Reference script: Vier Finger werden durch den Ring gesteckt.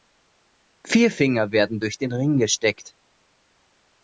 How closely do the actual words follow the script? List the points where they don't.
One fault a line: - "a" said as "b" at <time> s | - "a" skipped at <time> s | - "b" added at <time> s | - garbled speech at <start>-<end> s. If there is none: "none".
none